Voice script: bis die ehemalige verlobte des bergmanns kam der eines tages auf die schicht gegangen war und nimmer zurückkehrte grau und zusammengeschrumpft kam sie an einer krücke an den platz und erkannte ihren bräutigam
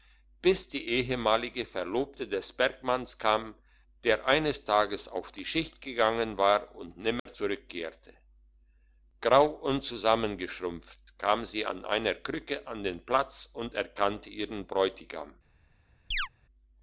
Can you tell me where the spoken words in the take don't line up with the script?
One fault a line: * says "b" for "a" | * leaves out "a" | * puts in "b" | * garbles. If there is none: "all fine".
all fine